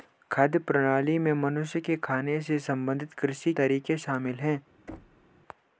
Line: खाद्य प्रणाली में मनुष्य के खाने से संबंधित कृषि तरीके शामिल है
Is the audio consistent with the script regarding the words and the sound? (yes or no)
no